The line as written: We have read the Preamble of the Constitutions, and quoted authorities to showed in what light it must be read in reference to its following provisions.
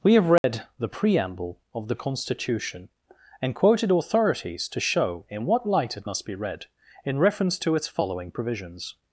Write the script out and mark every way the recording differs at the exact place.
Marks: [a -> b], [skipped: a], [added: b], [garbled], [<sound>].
We have read [dropout] the Preamble of the [Constitutions, -> Constitution] and quoted authorities to [showed -> show] in what light it must be read in reference to its following provisions.